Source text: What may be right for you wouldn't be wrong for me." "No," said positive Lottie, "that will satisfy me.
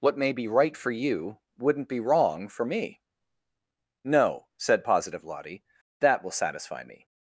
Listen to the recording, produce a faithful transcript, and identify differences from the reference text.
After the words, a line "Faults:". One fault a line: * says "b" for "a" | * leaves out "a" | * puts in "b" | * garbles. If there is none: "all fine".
What may be right for you wouldn't be wrong for me." "No," said positive Lottie, "that will satisfy me.
Faults:
all fine